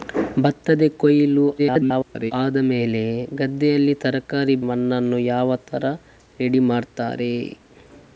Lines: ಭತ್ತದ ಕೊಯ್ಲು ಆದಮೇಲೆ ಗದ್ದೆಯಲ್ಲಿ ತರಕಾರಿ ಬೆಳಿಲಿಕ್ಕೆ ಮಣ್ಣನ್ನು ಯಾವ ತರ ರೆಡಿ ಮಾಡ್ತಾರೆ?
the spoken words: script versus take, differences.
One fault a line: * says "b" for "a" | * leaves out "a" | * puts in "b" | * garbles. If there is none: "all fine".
* garbles
* leaves out "ಬೆಳಿಲಿಕ್ಕೆ"